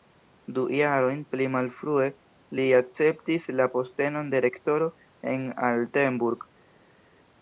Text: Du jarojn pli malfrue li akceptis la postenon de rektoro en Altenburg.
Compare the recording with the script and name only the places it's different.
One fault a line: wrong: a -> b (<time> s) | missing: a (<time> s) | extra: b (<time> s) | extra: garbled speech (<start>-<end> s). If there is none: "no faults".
no faults